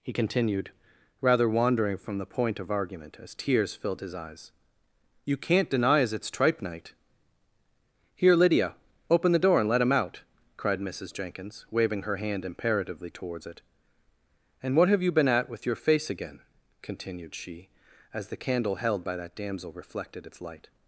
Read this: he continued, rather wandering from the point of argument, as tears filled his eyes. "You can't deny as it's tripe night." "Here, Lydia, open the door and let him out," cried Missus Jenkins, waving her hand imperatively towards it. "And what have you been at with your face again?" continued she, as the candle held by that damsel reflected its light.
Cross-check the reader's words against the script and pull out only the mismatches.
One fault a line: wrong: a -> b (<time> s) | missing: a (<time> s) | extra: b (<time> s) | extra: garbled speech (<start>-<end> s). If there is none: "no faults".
no faults